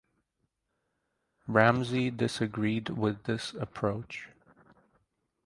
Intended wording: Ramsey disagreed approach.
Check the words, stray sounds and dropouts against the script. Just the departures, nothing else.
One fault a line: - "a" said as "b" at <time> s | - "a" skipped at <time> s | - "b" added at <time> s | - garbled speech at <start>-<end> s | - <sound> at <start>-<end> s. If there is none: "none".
- "with this" added at 2.9 s